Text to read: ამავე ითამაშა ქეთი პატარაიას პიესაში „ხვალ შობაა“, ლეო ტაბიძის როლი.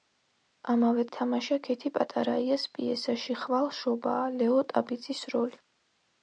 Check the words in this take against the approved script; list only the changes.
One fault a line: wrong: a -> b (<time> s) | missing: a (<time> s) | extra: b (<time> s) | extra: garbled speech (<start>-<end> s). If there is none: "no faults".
no faults